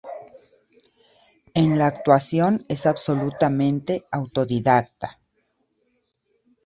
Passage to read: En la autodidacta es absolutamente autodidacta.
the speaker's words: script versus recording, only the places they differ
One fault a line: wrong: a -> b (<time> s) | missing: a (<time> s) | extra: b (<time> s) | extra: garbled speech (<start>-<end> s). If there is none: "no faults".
wrong: autodidacta -> actuación (1.9 s)